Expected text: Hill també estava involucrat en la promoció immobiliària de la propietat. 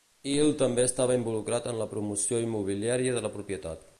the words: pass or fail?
pass